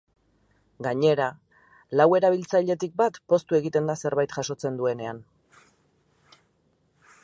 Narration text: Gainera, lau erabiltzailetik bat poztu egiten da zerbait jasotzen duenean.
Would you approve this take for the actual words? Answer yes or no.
yes